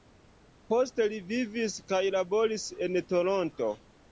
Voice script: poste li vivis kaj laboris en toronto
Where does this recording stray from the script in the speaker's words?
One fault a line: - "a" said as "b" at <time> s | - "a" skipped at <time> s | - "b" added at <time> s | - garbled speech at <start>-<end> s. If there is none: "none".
none